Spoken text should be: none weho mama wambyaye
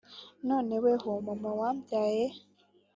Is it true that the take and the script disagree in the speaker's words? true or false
false